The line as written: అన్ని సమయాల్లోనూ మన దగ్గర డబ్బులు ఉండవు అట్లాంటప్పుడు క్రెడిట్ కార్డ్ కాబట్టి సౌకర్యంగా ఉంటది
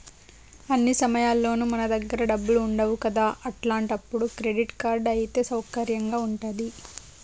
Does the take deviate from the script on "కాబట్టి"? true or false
true